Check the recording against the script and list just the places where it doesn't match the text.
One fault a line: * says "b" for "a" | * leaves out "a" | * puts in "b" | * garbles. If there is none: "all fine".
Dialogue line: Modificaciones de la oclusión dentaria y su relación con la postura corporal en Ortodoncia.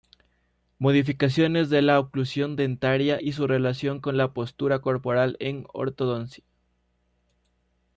all fine